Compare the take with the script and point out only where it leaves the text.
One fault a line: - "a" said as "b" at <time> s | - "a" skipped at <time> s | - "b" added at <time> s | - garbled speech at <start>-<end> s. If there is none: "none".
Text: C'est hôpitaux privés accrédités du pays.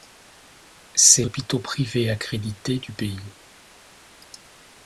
none